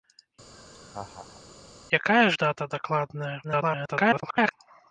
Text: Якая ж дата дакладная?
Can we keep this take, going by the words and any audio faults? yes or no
no